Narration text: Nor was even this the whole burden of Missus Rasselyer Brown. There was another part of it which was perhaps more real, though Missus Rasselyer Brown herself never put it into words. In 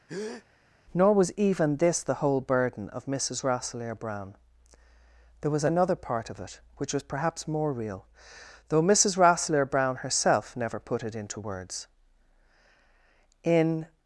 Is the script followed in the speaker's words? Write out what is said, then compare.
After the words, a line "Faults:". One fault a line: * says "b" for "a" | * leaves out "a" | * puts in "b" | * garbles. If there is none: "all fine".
Nor was even this the whole burden of Missus Rasselyer Brown. There was another part of it which was perhaps more real, though Missus Rasselyer Brown herself never put it into words. In
Faults:
all fine